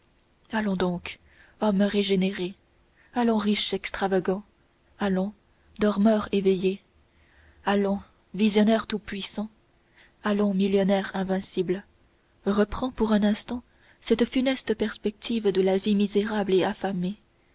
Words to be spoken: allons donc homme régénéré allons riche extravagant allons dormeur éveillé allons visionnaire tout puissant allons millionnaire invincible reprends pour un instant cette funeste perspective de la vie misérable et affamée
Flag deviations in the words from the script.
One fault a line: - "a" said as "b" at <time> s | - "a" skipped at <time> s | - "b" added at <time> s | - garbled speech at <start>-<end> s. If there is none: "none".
none